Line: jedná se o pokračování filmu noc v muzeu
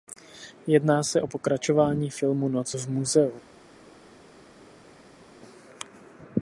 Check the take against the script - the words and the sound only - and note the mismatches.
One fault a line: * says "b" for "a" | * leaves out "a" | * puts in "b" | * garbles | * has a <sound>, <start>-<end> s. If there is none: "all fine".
all fine